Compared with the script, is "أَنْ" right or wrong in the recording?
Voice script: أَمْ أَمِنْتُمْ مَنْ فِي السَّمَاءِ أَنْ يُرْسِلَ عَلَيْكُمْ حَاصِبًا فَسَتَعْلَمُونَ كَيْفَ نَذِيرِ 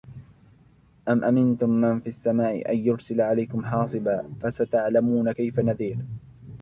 right